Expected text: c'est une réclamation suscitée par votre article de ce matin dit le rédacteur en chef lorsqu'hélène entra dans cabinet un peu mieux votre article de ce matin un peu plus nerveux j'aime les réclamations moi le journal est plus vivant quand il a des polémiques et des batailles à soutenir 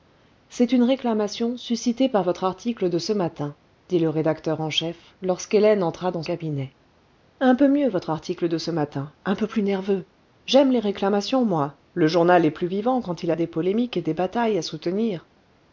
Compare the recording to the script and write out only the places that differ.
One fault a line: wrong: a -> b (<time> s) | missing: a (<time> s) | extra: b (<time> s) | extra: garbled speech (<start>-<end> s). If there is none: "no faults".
no faults